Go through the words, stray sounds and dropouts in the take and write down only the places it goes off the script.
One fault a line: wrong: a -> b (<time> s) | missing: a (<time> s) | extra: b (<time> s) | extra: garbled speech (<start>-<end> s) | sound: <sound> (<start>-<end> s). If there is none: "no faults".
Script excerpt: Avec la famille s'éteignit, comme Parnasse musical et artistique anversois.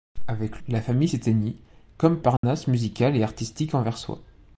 sound: dropout (2.4-2.4 s)